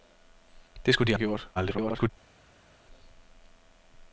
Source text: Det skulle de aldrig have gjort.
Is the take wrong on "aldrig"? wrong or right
wrong